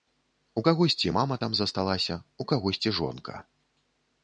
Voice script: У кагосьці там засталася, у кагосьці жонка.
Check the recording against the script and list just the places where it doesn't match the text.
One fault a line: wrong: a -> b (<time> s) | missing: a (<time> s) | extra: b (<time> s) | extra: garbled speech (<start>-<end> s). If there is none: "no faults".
extra: мама (1.1 s)